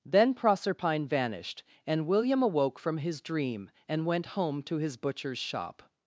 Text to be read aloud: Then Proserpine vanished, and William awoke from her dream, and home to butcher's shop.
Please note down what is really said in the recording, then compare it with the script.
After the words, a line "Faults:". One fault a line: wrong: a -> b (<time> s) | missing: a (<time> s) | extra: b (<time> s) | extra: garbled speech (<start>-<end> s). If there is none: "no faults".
Then Proserpine vanished, and William awoke from his dream, and went home to his butcher's shop.
Faults:
wrong: her -> his (3.0 s)
extra: went (4.1 s)
extra: his (4.8 s)